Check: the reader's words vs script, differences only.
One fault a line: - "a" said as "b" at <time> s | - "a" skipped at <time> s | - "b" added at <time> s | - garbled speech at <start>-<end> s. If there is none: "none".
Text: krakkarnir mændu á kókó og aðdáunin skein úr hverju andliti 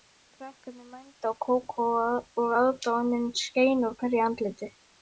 none